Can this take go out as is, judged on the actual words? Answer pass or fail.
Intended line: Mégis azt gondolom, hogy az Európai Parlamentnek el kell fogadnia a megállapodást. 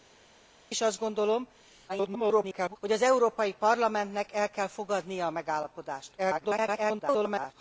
fail